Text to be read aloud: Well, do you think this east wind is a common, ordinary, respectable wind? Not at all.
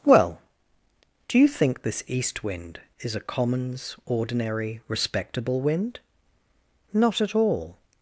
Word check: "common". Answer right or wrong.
wrong